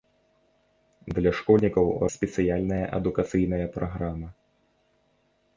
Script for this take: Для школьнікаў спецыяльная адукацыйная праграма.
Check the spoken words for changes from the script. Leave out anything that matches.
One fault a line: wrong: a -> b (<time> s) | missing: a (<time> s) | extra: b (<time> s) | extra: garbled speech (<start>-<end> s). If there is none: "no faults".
no faults